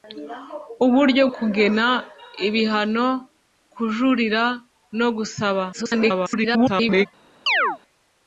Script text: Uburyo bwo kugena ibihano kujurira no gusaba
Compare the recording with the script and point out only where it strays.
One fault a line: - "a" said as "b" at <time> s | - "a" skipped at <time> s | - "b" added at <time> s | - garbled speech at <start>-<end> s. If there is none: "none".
- "bwo" skipped at 1.2 s
- garbled speech at 5.7-7.1 s